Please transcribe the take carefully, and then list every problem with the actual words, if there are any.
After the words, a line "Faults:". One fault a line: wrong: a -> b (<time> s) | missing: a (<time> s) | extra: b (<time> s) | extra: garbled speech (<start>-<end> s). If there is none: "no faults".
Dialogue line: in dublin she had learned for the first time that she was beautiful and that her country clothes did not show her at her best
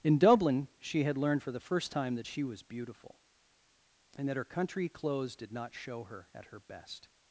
in dublin she had learned for the first time that she was beautiful and that her country clothes did not show her at her best
Faults:
no faults